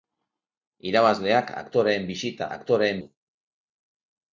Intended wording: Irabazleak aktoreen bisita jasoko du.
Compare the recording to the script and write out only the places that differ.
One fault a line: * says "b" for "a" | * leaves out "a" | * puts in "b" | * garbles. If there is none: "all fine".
* says "aktoreen" for "jasoko"